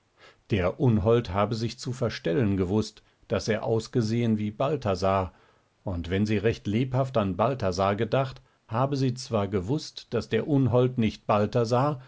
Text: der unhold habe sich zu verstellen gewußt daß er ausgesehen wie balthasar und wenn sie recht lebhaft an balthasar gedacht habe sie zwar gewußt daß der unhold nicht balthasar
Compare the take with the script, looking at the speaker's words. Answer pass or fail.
pass